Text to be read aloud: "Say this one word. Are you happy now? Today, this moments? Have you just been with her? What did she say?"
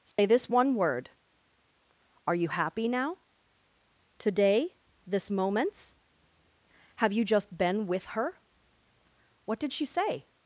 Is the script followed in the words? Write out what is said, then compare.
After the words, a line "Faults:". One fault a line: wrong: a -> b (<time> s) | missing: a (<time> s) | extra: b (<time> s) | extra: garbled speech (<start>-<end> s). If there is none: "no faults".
"Say this one word. Are you happy now? Today, this moments? Have you just been with her? What did she say?"
Faults:
no faults